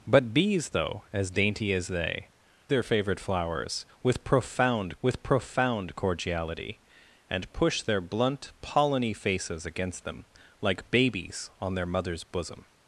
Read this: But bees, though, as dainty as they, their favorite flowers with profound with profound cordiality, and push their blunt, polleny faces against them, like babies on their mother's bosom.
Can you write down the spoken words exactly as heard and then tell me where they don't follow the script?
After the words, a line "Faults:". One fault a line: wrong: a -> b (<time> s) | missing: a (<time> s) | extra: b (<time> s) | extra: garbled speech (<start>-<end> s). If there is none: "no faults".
But bees, though, as dainty as they, their favorite flowers with profound with profound cordiality, and push their blunt, polleny faces against them, like babies on their mother's bosom.
Faults:
no faults